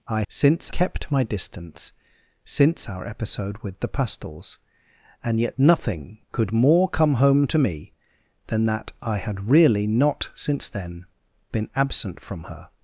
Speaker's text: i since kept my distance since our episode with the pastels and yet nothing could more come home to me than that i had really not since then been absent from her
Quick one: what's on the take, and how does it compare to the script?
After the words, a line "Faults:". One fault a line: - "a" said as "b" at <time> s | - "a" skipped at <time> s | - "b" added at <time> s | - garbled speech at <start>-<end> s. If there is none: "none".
i since kept my distance since our episode with the pastels and yet nothing could more come home to me than that i had really not since then been absent from her
Faults:
none